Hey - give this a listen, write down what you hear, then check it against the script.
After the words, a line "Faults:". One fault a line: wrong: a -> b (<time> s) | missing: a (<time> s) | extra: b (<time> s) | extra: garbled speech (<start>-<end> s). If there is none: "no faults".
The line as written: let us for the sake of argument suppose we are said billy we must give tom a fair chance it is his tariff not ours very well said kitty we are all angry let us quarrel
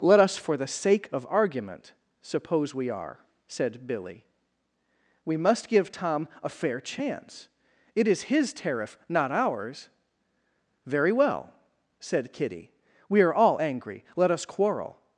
let us for the sake of argument suppose we are said billy we must give tom a fair chance it is his tariff not ours very well said kitty we are all angry let us quarrel
Faults:
no faults